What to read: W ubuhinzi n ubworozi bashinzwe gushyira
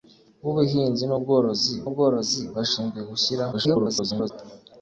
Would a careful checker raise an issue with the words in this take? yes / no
yes